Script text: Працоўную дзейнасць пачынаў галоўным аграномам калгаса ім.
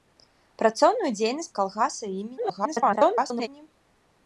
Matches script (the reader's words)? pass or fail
fail